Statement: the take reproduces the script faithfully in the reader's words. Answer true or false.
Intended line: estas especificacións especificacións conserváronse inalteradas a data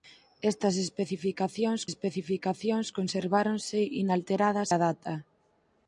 true